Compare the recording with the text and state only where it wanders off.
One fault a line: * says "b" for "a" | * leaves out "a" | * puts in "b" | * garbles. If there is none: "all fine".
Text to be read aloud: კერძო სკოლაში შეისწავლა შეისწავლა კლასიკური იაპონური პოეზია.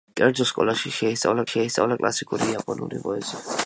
all fine